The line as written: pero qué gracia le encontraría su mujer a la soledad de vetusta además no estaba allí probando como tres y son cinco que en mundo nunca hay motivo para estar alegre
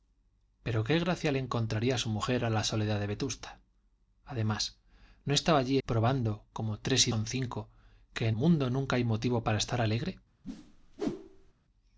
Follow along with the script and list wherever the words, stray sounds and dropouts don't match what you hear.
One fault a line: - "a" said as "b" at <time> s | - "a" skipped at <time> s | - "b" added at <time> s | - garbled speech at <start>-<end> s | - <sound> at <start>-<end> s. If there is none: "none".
- whoosh at 10.4-11.5 s